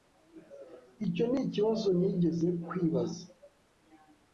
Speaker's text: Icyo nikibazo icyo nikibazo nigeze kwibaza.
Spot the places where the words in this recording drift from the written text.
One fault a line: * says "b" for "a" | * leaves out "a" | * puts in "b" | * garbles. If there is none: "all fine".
* leaves out "icyo nikibazo"